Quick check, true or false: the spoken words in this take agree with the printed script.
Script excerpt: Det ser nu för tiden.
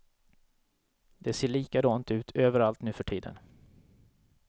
false